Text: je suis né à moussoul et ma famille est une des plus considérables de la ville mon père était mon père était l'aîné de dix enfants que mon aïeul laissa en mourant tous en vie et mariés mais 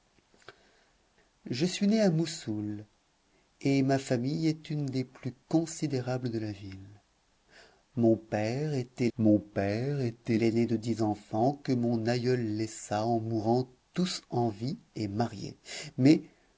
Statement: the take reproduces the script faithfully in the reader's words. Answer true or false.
true